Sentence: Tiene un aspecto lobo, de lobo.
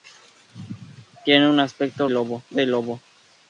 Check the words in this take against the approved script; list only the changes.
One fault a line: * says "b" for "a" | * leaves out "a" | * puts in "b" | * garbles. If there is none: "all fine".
all fine